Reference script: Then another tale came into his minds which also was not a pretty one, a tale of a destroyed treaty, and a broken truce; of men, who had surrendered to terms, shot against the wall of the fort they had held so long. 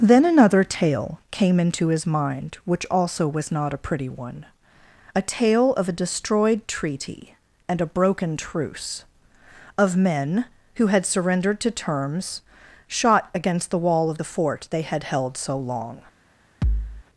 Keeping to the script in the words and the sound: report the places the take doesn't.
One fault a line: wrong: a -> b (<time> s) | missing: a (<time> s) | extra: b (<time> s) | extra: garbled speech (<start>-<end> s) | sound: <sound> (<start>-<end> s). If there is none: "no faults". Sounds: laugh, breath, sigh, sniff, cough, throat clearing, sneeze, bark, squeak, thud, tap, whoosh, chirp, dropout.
wrong: minds -> mind (2.1 s)
sound: thud (16.6-17.0 s)